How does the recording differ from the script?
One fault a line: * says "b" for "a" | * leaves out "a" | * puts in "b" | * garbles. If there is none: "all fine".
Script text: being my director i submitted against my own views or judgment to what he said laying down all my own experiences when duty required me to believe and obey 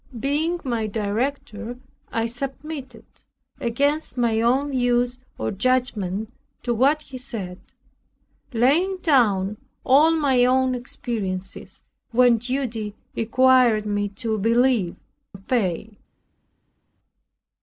* leaves out "and"